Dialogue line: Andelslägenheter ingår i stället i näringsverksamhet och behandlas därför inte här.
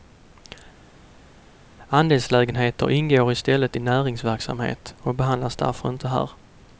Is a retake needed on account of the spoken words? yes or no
no